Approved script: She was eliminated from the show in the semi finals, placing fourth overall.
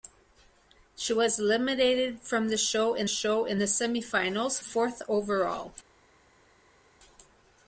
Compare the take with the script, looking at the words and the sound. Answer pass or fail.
fail